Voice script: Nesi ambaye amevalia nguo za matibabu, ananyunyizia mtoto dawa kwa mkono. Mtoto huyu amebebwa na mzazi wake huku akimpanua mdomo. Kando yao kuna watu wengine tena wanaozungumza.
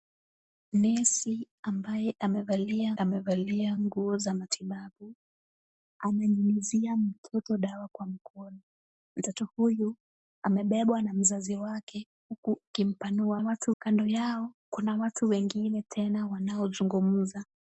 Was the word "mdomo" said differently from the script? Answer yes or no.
yes